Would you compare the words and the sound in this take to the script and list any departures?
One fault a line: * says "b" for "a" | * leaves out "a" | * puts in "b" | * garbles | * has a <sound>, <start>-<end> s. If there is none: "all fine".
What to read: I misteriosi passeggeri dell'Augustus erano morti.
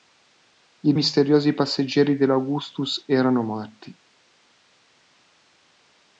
all fine